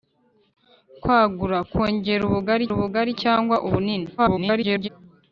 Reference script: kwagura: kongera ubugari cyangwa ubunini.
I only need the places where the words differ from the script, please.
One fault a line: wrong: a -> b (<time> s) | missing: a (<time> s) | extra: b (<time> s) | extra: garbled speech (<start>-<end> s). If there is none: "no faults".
extra: ubugari (2.7 s)
extra: garbled speech (4.2-4.9 s)